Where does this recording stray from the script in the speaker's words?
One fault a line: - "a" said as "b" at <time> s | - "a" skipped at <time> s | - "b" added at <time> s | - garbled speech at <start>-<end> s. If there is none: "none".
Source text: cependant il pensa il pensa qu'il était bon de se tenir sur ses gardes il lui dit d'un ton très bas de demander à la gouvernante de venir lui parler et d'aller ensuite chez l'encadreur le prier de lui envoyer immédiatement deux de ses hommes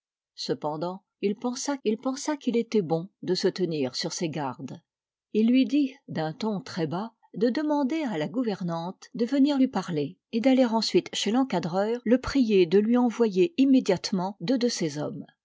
none